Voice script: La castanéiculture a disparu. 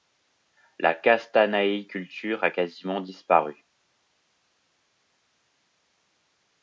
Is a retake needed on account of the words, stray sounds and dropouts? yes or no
yes